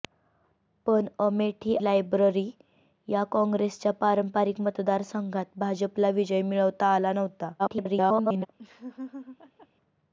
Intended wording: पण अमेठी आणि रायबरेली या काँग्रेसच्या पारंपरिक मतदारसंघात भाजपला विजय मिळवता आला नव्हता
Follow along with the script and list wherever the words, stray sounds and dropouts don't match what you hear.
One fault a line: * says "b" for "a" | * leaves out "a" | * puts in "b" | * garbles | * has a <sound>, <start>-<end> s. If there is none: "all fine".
* leaves out "आणि"
* garbles
* has a laugh, 8.6-9.7 s